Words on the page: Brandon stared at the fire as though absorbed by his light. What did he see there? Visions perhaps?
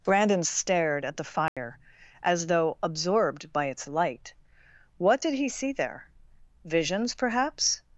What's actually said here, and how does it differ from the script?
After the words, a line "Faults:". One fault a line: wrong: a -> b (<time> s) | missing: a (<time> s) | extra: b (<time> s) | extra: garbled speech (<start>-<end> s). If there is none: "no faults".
Brandon stared at the fire as though absorbed by its light. What did he see there? Visions perhaps?
Faults:
wrong: his -> its (3.6 s)